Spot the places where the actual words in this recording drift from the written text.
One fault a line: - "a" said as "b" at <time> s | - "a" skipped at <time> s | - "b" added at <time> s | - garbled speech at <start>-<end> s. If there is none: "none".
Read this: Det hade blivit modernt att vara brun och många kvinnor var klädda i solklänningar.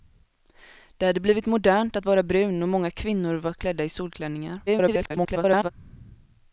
- garbled speech at 4.7-5.7 s